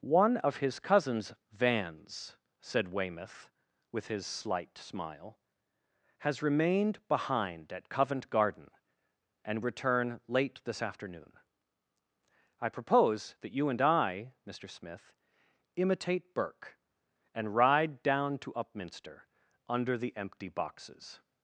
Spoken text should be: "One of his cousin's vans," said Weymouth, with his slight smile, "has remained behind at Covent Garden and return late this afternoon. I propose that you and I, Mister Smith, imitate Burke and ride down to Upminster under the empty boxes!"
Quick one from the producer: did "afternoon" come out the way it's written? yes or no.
yes